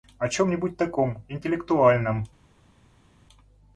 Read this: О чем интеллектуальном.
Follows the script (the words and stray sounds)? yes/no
no